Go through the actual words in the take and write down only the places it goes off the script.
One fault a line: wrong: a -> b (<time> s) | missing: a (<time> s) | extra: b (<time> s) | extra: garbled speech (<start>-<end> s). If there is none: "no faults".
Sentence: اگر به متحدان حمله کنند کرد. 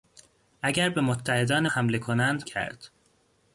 no faults